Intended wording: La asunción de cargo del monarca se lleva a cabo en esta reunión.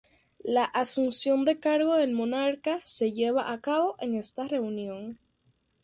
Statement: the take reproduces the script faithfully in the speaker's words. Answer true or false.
true